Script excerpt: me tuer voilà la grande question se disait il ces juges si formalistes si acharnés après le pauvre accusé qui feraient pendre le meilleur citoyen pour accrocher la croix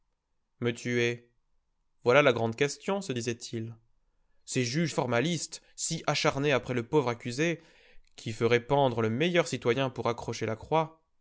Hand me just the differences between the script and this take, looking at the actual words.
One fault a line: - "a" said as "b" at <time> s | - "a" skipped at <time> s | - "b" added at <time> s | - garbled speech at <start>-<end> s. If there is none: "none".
- "si" skipped at 4.9 s